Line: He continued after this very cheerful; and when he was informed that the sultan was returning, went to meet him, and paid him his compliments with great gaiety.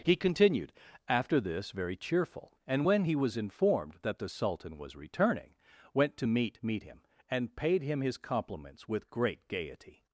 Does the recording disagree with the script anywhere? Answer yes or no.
yes